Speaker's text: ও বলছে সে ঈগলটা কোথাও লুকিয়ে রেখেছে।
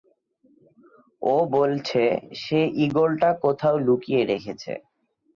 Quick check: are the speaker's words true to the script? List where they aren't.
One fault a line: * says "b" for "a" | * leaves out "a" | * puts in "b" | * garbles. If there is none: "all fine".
all fine